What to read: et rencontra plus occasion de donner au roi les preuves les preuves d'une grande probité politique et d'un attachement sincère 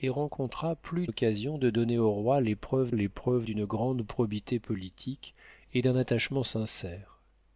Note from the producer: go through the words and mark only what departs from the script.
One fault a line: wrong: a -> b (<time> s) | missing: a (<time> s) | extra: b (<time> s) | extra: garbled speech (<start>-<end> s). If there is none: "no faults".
no faults